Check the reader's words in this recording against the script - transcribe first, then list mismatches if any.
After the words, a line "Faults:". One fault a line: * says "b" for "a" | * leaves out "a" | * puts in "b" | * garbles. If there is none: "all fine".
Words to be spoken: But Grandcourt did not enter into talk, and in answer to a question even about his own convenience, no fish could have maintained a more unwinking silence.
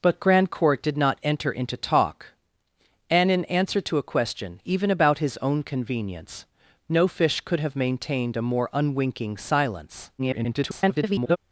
But Grandcourt did not enter into talk, and in answer to a question even about his own convenience, no fish could have maintained a more unwinking silence. [garbled]
Faults:
* garbles